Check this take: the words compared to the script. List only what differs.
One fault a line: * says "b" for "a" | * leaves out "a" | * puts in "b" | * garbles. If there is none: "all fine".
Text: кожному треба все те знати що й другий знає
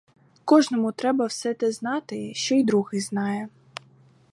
all fine